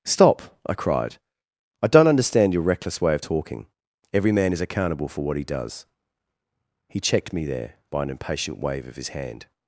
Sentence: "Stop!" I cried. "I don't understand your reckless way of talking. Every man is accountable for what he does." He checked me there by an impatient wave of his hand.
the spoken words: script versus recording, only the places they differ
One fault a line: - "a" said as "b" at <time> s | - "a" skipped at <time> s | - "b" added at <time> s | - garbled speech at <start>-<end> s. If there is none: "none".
none